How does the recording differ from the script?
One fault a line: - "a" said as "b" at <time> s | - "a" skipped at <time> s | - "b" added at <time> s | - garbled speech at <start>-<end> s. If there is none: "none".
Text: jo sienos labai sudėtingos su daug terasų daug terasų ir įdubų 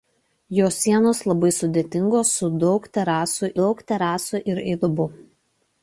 none